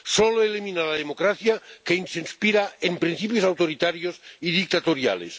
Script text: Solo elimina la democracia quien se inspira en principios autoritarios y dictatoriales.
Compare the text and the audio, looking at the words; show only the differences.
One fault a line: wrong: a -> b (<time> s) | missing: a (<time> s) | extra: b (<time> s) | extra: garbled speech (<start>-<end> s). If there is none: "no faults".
no faults